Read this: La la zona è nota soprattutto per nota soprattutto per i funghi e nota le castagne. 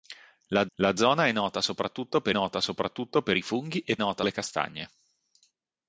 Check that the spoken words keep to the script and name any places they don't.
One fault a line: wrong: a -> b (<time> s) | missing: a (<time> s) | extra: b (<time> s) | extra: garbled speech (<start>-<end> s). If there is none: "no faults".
no faults